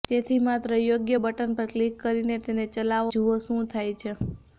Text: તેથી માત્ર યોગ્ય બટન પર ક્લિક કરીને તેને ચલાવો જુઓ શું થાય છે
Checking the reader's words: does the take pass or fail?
pass